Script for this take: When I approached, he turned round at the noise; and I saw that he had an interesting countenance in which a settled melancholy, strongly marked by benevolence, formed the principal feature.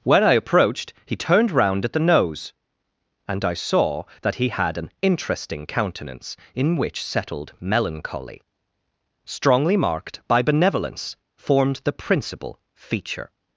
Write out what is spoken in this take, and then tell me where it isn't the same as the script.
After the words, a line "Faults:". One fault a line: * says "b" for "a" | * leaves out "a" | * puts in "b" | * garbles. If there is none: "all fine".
When I approached, he turned round at the nose; and I saw that he had an interesting countenance in which settled melancholy, strongly marked by benevolence, formed the principal feature.
Faults:
* says "nose" for "noise"
* leaves out "a"